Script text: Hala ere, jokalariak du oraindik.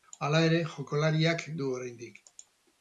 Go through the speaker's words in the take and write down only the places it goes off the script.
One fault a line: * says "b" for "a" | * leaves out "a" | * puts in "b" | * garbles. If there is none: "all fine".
all fine